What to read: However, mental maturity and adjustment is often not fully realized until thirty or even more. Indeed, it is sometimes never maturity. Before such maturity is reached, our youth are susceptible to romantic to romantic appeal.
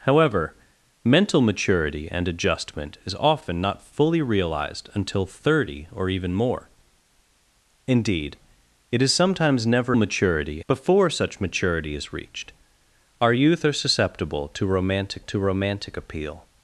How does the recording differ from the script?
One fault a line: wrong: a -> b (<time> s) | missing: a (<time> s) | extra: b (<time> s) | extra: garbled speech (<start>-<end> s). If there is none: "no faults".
no faults